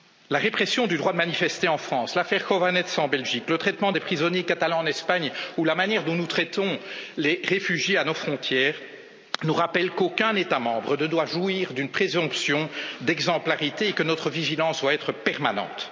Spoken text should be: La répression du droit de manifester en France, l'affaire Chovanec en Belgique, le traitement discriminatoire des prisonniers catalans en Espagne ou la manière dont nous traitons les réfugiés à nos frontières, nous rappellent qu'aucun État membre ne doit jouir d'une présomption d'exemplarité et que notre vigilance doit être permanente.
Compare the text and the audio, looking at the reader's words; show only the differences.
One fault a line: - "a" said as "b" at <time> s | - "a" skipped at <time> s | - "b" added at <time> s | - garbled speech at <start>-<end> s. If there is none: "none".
- "discriminatoire" skipped at 3.9 s